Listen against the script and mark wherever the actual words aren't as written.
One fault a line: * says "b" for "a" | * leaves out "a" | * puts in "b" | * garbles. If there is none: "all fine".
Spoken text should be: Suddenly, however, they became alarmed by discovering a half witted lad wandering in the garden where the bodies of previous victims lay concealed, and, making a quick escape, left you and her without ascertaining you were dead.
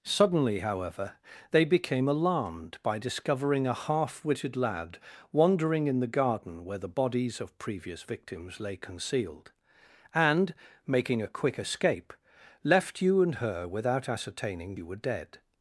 all fine